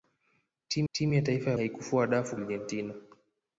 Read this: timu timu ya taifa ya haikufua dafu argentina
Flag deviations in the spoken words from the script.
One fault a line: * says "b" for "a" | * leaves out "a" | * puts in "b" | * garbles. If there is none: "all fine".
all fine